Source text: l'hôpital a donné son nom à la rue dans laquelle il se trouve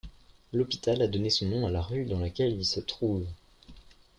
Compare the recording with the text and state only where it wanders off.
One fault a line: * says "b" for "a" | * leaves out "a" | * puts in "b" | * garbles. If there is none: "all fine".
all fine